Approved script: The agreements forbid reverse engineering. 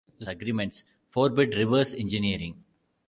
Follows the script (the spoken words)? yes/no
yes